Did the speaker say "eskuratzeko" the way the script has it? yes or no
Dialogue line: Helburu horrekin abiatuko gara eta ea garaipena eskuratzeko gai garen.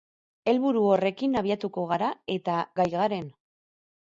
no